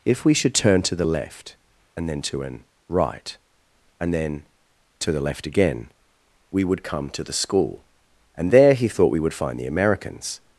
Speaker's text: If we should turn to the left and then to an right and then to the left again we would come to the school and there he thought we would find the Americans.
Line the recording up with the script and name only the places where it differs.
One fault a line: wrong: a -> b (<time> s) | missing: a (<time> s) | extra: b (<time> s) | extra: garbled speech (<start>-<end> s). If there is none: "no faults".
no faults